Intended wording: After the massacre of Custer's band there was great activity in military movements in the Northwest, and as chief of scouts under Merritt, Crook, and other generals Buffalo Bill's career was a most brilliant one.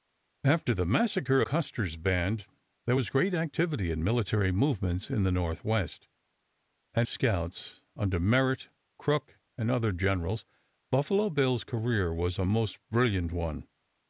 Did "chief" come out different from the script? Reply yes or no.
yes